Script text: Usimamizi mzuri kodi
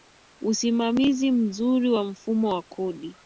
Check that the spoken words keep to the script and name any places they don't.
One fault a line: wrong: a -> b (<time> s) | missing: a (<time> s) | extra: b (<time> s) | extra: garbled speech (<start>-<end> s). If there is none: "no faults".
extra: wa mfumo wa (1.9 s)